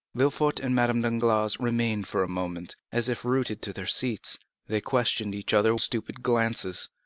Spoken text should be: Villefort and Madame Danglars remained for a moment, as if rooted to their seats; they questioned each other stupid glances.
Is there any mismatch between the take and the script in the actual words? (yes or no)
no